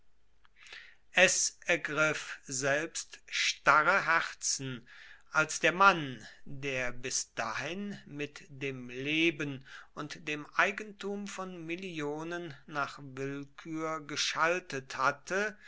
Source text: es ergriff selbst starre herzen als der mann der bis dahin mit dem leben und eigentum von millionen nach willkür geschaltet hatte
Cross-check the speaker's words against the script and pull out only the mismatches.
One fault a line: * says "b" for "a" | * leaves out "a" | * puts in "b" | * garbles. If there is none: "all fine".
* puts in "dem"